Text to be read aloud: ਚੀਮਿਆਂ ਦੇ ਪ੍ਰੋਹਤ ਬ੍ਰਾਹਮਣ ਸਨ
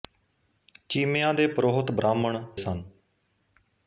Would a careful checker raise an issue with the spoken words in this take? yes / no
no